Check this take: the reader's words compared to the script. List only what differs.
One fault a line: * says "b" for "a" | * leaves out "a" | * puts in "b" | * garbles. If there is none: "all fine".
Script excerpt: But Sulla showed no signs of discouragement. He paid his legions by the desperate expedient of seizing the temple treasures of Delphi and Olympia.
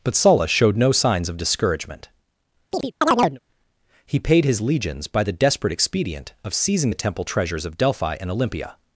all fine